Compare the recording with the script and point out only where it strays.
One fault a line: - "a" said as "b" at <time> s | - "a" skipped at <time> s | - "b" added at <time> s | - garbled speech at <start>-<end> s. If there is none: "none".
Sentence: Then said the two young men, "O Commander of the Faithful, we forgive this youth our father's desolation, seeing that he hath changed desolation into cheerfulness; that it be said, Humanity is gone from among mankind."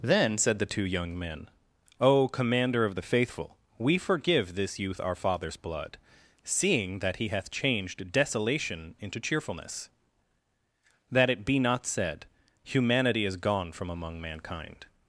- "desolation" said as "blood" at 5.6 s
- "not" added at 11.6 s